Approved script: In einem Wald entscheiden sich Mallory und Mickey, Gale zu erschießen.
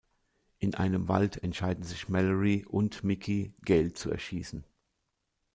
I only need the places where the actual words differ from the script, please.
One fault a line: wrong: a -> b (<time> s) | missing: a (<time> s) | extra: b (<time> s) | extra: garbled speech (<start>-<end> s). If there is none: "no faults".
no faults